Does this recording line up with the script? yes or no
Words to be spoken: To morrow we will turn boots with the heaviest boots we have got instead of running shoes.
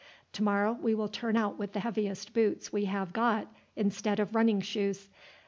no